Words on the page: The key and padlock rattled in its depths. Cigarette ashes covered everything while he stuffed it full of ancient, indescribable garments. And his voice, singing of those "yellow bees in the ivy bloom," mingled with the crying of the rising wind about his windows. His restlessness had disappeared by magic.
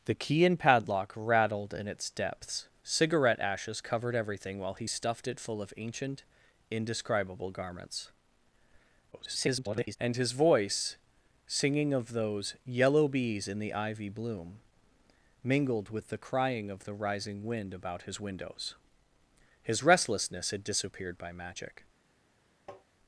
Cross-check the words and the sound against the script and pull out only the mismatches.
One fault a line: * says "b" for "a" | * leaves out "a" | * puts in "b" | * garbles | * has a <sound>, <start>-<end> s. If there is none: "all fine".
* garbles
* has a tap, 22.7-22.9 s